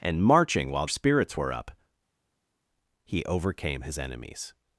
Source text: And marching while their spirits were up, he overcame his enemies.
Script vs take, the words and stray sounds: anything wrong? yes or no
yes